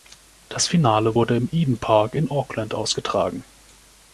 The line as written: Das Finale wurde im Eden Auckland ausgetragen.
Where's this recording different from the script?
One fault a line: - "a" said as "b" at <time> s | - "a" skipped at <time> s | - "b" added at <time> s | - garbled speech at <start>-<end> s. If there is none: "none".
- "Park in" added at 1.8 s